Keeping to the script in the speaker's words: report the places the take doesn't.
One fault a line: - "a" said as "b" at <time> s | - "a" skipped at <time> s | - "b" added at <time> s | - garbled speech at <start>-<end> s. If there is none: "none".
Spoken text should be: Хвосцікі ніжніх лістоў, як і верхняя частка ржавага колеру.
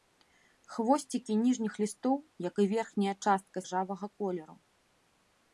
none